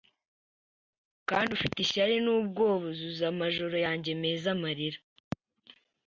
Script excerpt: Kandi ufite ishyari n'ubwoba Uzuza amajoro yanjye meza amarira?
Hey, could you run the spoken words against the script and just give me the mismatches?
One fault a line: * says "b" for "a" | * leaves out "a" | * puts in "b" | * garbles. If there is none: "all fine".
all fine